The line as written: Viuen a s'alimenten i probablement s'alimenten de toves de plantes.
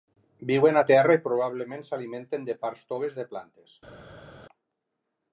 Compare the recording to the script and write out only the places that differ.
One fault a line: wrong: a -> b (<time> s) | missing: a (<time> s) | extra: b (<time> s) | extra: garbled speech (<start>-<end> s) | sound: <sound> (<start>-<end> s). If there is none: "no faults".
wrong: s'alimenten -> terra (0.9 s)
extra: parts (2.6 s)